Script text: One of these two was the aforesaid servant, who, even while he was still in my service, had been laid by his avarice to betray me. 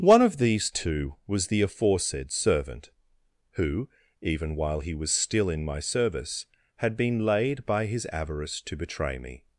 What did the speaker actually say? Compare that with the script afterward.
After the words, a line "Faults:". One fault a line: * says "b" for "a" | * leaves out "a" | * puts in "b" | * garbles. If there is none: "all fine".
One of these two was the aforesaid servant, who, even while he was still in my service, had been laid by his avarice to betray me.
Faults:
all fine